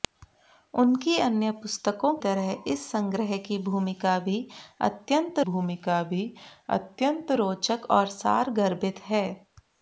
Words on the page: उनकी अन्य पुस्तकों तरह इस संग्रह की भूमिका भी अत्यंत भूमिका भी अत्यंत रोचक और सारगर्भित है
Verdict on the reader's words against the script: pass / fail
pass